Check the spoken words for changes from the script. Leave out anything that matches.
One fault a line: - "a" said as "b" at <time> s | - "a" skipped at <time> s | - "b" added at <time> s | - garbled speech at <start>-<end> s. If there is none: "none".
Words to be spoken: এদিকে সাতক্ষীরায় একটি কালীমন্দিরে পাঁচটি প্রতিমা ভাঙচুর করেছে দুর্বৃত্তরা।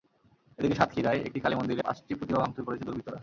none